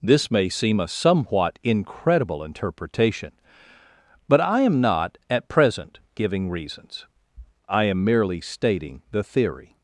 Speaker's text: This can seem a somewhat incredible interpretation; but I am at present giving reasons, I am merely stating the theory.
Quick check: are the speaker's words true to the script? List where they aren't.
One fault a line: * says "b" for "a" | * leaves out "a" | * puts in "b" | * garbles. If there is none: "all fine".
* says "may" for "can"
* puts in "not"